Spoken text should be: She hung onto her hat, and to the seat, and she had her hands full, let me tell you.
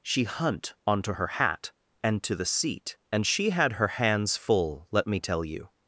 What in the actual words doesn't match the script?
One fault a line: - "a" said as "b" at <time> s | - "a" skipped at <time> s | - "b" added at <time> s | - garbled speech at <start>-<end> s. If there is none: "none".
- "hung" said as "hunt" at 0.2 s